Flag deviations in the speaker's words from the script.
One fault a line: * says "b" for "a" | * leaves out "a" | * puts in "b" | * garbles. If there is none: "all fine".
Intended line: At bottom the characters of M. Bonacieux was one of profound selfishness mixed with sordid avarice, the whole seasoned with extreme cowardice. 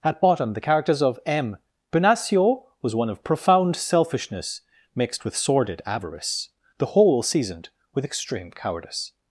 all fine